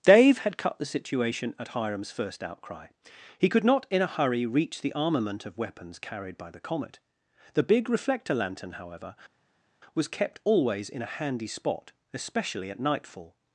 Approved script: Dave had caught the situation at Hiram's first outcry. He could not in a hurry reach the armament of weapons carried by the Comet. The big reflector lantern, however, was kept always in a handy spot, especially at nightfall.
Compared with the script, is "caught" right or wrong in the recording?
wrong